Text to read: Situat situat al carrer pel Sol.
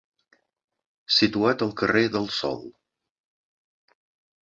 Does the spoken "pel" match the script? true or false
false